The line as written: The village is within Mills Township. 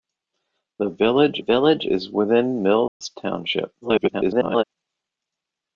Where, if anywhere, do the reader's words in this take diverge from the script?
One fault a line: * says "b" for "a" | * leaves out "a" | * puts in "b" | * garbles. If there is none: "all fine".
* puts in "village"
* garbles